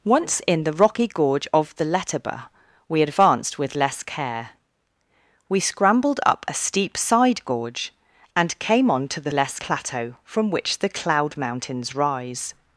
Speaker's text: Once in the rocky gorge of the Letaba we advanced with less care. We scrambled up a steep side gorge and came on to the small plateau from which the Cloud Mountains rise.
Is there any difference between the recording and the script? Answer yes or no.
yes